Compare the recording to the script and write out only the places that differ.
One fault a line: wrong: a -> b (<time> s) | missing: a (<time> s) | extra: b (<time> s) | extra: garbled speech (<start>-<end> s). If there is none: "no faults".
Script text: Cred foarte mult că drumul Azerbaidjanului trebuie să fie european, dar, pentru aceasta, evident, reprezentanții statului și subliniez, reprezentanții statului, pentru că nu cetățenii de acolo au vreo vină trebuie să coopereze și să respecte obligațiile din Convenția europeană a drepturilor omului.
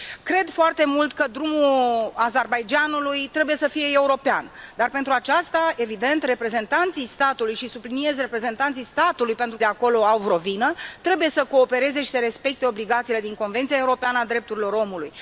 missing: că nu cetățenii (9.6 s)